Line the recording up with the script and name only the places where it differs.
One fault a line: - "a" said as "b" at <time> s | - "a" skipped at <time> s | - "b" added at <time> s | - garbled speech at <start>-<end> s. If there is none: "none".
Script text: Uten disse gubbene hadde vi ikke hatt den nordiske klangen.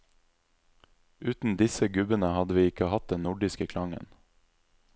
none